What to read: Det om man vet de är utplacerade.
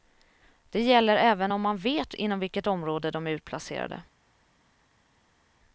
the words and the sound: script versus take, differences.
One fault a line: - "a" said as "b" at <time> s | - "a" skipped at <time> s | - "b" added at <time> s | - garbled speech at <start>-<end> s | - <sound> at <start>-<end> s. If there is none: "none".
- "gäller även" added at 0.8 s
- "inom vilket område" added at 2.1 s